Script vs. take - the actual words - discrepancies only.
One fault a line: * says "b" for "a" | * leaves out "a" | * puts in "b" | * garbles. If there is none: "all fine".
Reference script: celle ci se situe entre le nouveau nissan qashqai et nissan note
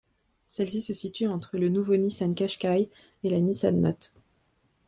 * puts in "la"